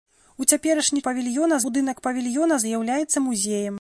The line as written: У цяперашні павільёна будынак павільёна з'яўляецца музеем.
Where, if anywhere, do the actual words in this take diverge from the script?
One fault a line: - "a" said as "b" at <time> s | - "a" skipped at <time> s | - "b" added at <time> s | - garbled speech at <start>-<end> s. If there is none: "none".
none